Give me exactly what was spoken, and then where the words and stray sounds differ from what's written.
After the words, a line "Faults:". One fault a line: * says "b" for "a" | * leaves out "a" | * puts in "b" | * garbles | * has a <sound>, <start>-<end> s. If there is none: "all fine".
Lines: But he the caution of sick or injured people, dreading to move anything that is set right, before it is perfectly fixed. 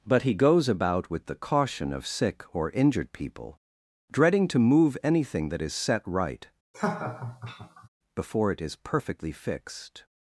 But he goes about with the caution of sick or injured people, dreading to move anything that is set right, before it is perfectly fixed.
Faults:
* puts in "goes about with"
* has a laugh, 6.7-7.9 s